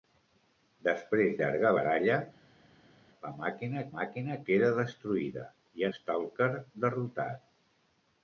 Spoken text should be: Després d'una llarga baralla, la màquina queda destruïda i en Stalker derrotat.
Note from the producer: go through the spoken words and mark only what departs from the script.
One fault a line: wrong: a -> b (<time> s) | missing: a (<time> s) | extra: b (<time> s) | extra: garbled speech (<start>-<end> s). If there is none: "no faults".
missing: d'una (1.4 s)
extra: màquina (4.0 s)
missing: en (5.9 s)